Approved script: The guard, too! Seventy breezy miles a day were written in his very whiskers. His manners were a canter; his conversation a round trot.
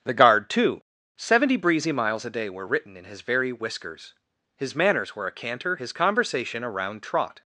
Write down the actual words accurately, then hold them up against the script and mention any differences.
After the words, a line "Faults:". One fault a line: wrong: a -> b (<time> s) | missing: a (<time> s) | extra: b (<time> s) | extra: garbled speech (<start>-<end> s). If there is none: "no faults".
The guard, too! Seventy breezy miles a day were written in his very whiskers. His manners were a canter; his conversation a round trot.
Faults:
no faults